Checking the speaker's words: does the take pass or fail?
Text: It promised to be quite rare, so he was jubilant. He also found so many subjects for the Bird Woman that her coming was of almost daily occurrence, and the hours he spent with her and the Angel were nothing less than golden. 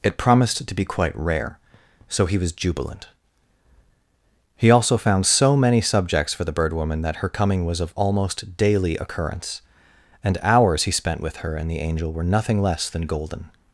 fail